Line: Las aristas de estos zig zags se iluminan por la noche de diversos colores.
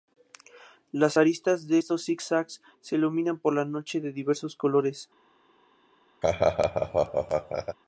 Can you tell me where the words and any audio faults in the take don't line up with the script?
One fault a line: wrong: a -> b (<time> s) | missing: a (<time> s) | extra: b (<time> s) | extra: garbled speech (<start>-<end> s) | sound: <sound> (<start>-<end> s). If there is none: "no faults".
sound: laugh (6.2-7.8 s)